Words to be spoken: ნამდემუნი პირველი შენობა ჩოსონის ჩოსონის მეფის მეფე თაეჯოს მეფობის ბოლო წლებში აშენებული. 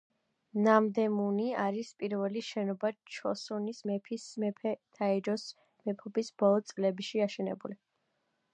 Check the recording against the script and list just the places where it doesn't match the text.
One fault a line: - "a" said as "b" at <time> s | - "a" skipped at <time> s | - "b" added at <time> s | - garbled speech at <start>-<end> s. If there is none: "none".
- "არის" added at 1.6 s
- "ჩოსონის" skipped at 3.8 s